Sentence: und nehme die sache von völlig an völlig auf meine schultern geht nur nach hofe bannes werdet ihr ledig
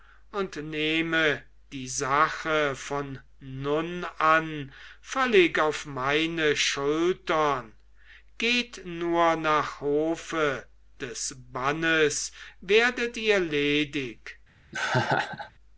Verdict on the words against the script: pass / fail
fail